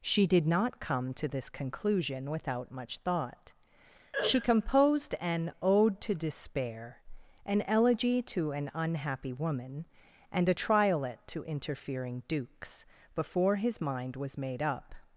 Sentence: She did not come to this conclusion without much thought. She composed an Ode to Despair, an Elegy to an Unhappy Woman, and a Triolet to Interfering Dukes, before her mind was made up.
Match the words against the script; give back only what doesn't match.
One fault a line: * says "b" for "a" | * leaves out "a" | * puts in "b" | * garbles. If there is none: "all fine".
* says "his" for "her"